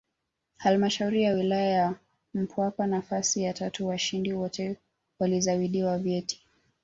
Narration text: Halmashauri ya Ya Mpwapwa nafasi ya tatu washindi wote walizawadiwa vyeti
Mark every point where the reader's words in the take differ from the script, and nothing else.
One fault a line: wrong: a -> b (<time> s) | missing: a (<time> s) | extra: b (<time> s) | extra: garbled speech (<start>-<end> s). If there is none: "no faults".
extra: Wilaya (1.3 s)